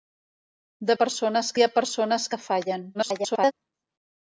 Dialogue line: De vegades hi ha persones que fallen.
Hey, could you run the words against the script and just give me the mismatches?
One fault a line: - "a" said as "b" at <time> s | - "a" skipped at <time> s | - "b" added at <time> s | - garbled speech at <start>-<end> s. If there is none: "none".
- "vegades" said as "persones" at 1.0 s
- garbled speech at 2.9-3.5 s